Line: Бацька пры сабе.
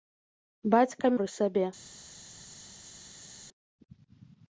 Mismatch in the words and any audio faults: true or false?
false